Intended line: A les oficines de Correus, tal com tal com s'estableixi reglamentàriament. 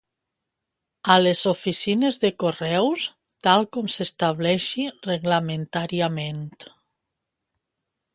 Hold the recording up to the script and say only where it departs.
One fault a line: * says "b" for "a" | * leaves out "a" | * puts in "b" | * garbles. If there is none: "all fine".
* leaves out "tal com"